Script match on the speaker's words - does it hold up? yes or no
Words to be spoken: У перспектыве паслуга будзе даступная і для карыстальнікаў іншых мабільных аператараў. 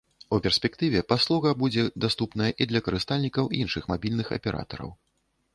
yes